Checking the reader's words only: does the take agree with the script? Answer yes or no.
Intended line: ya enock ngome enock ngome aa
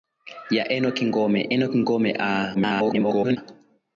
no